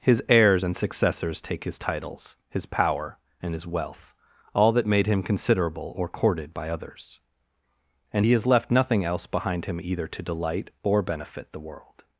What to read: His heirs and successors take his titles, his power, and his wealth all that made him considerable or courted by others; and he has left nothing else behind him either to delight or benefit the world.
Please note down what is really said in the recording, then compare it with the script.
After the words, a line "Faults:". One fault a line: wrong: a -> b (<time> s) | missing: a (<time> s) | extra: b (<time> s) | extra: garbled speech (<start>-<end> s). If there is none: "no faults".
His heirs and successors take his titles, his power, and his wealth all that made him considerable or courted by others; and he has left nothing else behind him either to delight or benefit the world.
Faults:
no faults